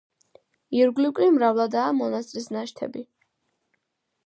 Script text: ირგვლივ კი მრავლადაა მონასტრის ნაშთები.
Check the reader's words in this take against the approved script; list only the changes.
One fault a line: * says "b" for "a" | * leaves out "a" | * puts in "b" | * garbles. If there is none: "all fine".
all fine